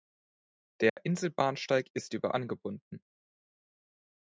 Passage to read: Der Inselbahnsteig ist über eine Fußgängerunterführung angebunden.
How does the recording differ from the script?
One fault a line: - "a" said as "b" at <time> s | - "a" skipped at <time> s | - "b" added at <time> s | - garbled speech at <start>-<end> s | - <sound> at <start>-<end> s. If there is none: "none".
- dropout at 0.9-1.0 s
- "eine Fußgängerunterführung" skipped at 2.3 s